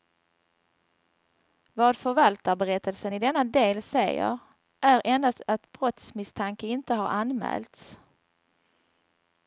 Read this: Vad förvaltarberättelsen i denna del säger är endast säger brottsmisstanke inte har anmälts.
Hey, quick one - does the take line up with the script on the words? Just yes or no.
no